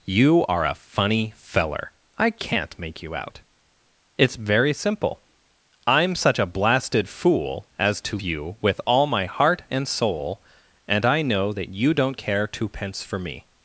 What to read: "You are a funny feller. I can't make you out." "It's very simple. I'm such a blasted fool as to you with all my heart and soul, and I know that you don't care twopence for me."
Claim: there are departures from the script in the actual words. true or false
false